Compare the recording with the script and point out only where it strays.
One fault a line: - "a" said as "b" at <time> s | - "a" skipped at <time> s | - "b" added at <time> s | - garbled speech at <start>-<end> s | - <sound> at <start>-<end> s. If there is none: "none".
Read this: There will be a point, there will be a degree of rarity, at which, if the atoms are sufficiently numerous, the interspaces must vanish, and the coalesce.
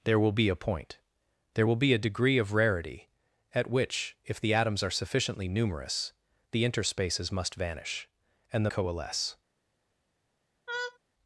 - laugh at 10.7-11.0 s